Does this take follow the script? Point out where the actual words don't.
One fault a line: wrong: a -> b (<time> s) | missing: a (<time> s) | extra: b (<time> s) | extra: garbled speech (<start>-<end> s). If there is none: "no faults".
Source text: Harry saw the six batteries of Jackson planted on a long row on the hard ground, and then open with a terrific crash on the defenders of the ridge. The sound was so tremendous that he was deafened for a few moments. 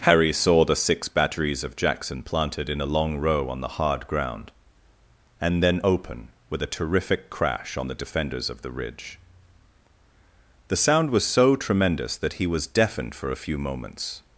wrong: on -> in (2.7 s)